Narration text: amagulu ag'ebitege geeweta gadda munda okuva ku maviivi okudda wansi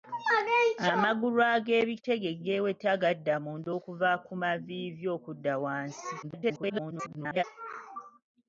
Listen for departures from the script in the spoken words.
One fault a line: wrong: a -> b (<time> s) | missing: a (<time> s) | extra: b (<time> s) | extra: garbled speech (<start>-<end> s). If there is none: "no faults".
extra: garbled speech (6.2-7.4 s)